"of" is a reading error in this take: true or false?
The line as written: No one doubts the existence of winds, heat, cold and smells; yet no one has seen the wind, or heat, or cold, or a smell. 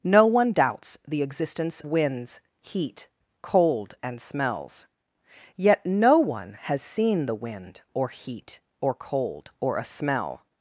true